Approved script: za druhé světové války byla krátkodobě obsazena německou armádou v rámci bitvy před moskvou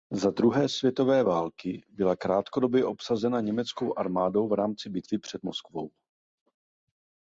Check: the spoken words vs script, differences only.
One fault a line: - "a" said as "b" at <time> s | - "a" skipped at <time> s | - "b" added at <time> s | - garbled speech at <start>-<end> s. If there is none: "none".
none